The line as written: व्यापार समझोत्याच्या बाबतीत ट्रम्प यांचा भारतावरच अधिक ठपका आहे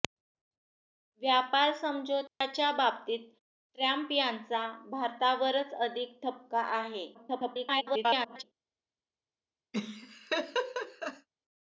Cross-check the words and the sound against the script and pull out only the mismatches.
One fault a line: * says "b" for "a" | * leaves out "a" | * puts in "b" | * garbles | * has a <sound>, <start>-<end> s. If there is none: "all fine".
* has a dropout, 2.3-2.4 s
* garbles
* has a laugh, 9.7-11.3 s